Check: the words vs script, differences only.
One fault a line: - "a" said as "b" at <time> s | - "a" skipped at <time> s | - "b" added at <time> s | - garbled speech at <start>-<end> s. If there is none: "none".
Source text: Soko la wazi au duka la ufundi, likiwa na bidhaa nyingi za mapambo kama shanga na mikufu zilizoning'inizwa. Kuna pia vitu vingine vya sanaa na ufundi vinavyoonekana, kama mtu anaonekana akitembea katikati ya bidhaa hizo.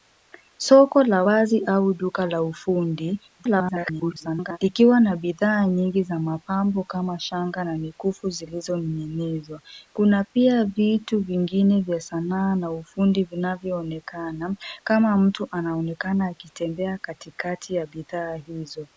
- garbled speech at 3.4-4.6 s